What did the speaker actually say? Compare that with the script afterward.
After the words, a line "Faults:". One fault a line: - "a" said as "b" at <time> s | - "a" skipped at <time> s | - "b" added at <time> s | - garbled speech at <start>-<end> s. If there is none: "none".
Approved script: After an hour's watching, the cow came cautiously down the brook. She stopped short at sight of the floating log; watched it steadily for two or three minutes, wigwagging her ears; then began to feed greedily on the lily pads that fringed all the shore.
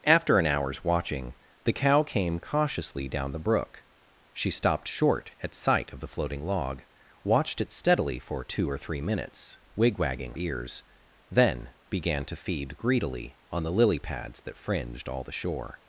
After an hour's watching, the cow came cautiously down the brook. She stopped short at sight of the floating log; watched it steadily for two or three minutes, wigwagging ears; then began to feed greedily on the lily pads that fringed all the shore.
Faults:
- "her" skipped at 10.3 s